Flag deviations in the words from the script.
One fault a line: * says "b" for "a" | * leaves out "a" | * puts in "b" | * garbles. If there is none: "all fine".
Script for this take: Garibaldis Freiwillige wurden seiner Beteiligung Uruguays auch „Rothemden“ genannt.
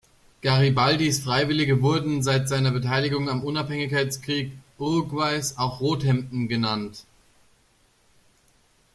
* puts in "seit"
* puts in "am Unabhängigkeitskrieg"